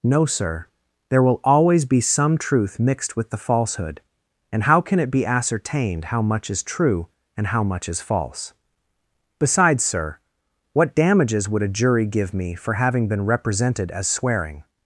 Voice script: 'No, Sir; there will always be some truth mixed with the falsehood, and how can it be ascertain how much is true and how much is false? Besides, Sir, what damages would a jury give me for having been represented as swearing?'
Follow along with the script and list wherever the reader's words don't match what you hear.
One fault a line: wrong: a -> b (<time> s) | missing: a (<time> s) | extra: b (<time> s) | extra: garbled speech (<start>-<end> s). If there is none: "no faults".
wrong: ascertain -> ascertained (5.2 s)